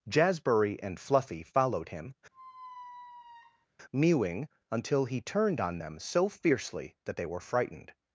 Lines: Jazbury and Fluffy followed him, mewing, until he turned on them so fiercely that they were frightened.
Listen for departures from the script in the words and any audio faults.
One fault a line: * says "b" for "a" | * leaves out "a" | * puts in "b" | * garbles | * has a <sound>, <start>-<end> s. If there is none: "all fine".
* has a squeak, 2.3-3.7 s